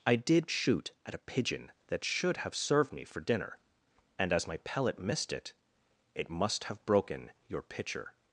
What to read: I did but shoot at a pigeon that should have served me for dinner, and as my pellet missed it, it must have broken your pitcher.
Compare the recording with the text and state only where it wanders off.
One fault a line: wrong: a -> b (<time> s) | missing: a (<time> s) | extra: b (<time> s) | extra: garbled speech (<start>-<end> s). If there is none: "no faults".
missing: but (0.5 s)